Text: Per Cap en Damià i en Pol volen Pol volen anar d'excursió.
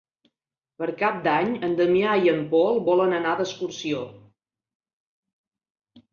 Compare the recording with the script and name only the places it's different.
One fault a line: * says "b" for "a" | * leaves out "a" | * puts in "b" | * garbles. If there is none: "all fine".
* puts in "d'Any"
* leaves out "Pol volen"